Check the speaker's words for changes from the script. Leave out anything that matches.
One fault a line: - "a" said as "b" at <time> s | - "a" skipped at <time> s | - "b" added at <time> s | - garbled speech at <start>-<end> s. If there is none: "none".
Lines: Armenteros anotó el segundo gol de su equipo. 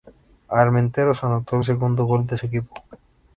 none